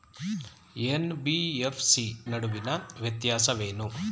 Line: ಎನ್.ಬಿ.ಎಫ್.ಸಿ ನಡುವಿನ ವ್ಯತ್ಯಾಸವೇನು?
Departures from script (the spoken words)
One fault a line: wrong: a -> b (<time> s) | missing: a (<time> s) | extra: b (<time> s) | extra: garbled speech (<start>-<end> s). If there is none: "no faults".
no faults